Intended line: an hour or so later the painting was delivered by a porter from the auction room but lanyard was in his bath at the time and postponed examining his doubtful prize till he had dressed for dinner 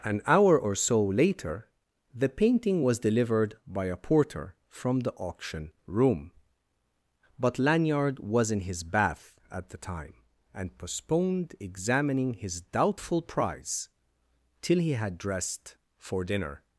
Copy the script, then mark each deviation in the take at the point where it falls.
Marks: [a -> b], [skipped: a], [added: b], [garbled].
an hour or so later the painting was delivered by a porter from the auction room but lanyard was in his bath at the time and postponed examining his doubtful prize till he had dressed for dinner